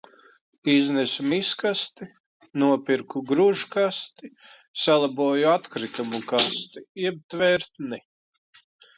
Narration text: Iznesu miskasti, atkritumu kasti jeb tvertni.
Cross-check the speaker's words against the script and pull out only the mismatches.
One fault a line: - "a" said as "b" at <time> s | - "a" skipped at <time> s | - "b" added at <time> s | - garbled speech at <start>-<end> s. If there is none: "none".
- "nopirku gružkasti salaboju" added at 2.6 s